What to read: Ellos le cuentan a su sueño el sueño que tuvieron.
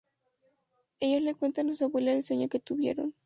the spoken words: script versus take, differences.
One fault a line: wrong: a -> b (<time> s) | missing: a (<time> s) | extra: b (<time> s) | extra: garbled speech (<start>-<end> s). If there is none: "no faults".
wrong: sueño -> abuela (1.9 s)